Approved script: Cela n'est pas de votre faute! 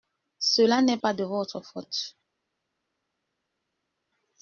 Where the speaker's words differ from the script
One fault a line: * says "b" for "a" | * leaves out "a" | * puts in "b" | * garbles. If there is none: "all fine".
all fine